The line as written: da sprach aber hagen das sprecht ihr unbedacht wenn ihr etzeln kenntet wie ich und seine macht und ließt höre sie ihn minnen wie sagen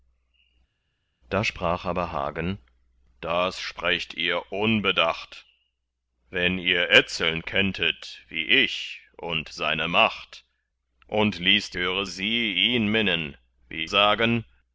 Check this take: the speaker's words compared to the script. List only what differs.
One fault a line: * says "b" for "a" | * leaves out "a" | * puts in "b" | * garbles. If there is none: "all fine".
all fine